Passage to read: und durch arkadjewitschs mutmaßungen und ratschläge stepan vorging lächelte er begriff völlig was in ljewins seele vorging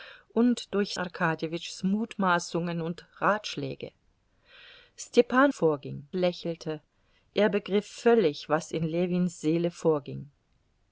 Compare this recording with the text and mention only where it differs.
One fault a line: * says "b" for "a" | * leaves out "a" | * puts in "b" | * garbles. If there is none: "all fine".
all fine